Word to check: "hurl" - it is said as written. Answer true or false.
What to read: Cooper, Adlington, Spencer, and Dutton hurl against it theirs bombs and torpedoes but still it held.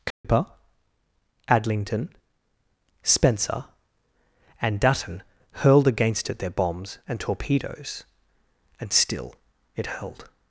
false